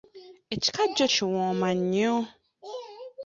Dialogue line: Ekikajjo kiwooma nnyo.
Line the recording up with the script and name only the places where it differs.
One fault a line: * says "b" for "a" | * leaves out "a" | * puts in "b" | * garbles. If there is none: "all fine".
all fine